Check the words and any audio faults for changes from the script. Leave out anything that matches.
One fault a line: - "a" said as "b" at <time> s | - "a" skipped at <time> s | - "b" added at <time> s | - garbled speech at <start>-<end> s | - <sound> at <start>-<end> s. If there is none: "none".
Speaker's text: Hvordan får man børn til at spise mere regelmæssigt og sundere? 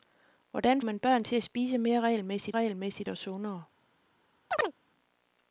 - "får" skipped at 0.8 s
- "regelmæssigt" added at 2.5 s
- chirp at 4.5-4.7 s